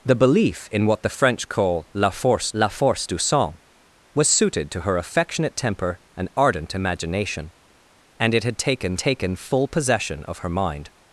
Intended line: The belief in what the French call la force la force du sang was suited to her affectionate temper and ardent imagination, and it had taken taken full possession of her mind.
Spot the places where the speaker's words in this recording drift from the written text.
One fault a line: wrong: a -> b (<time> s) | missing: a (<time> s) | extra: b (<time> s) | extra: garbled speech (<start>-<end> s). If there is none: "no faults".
no faults